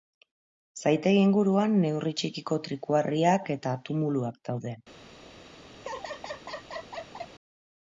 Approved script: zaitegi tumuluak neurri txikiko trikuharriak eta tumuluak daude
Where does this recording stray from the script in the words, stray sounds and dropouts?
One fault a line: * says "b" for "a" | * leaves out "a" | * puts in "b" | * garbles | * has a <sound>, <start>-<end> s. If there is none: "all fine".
* says "inguruan" for "tumuluak"
* has a laugh, 5.8-7.3 s